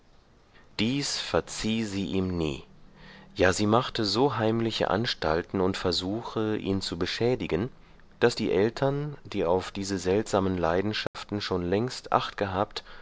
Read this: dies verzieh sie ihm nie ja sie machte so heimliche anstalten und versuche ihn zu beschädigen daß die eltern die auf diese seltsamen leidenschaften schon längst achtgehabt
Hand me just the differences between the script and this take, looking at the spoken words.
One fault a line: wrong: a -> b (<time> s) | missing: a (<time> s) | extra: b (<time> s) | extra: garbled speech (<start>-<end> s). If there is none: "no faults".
no faults